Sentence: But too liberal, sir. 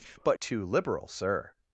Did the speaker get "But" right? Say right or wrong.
right